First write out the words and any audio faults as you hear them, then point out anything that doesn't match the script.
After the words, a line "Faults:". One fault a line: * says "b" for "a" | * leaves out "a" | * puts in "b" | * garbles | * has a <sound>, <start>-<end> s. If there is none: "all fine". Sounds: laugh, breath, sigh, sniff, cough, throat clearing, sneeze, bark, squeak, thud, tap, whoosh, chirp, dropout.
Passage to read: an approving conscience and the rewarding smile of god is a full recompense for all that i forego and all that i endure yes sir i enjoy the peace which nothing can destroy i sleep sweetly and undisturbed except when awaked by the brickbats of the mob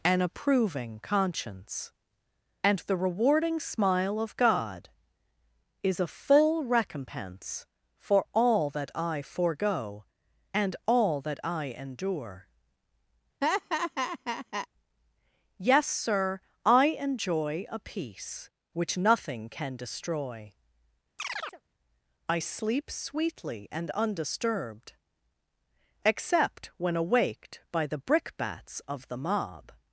an approving conscience and the rewarding smile of god is a full recompense for all that i forego and all that i endure yes sir i enjoy a peace which nothing can destroy i sleep sweetly and undisturbed except when awaked by the brickbats of the mob
Faults:
* has a laugh, 13.4-14.7 s
* says "a" for "the"
* has a chirp, 21.2-21.6 s